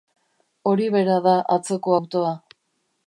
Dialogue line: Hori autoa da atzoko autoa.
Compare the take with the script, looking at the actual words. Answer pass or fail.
fail